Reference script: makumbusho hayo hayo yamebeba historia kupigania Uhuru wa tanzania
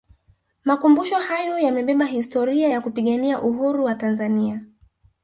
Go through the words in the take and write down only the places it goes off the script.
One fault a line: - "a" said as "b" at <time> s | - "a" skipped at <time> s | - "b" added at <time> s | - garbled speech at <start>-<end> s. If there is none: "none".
- "hayo" skipped at 1.6 s
- "ya" added at 2.7 s